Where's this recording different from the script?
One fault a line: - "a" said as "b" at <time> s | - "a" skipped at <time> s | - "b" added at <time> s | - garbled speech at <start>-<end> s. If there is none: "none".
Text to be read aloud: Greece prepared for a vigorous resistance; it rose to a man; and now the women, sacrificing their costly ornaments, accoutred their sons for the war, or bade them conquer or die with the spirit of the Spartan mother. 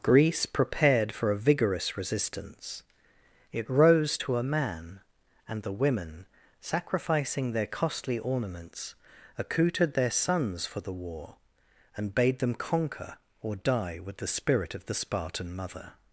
- "now" skipped at 5.6 s
- "or" said as "and" at 12.0 s